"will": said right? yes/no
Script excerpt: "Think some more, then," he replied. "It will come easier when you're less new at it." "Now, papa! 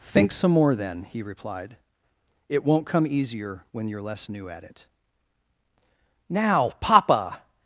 no